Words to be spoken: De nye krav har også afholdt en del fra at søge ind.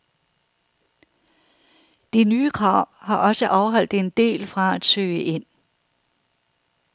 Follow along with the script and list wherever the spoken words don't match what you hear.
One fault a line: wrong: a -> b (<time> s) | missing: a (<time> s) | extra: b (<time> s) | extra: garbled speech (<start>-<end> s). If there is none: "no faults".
no faults